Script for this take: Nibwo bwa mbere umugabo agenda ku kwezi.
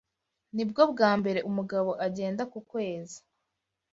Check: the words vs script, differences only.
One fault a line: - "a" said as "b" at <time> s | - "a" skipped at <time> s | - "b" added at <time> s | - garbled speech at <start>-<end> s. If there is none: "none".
none